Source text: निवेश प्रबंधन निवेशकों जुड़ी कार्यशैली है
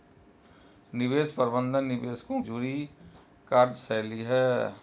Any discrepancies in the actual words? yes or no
no